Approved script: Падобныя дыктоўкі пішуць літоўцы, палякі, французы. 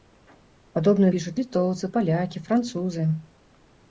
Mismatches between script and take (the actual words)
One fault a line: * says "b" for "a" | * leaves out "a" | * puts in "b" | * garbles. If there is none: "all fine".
* leaves out "дыктоўкі"